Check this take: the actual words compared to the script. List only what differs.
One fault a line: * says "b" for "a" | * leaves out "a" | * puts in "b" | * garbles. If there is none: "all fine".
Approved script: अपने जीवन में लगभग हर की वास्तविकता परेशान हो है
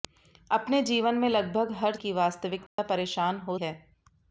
all fine